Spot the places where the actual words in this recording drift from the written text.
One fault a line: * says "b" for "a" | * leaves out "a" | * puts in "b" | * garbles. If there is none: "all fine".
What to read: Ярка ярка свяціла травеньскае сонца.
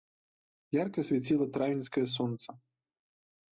* leaves out "ярка"